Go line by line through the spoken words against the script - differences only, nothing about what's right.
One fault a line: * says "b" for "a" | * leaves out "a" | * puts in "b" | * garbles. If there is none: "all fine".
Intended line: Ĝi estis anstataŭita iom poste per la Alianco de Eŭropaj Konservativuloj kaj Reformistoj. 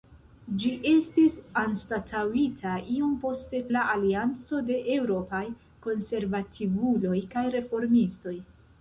* leaves out "per"